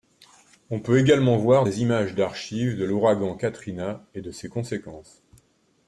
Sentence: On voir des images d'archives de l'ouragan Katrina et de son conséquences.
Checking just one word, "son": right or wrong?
wrong